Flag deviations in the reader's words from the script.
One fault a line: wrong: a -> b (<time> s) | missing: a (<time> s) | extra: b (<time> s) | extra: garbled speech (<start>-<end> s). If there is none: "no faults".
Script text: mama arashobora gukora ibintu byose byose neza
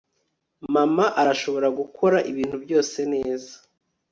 missing: byose (3.0 s)